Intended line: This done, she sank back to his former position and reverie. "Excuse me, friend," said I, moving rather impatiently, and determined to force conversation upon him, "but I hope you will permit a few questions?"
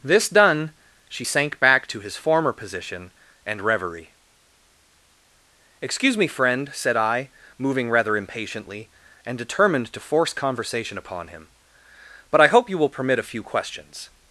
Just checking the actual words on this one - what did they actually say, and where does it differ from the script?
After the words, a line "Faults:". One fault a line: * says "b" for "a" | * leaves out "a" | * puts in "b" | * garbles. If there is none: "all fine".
This done, she sank back to his former position and reverie. "Excuse me, friend," said I, moving rather impatiently, and determined to force conversation upon him, "but I hope you will permit a few questions?"
Faults:
all fine